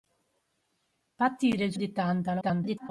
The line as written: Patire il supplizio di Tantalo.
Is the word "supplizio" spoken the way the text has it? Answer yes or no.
no